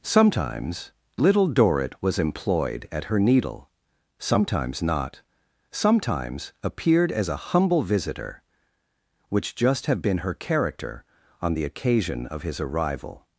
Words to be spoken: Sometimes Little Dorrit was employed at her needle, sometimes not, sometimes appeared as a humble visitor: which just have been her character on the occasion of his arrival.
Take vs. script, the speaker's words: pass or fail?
pass